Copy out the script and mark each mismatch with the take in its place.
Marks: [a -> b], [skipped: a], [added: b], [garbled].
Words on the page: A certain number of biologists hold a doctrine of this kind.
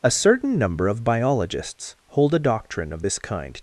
A certain number of biologists hold a doctrine of this kind.